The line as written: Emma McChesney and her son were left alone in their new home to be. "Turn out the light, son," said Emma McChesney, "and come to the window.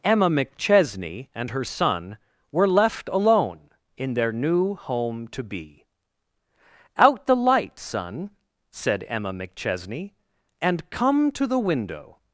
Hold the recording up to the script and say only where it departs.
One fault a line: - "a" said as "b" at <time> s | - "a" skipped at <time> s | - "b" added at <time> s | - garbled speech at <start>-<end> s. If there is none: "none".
- "Turn" skipped at 5.9 s